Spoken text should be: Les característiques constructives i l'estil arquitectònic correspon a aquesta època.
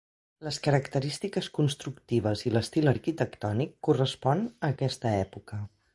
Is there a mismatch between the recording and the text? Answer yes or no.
no